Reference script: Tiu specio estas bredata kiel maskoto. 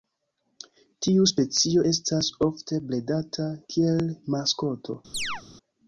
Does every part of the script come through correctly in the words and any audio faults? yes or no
no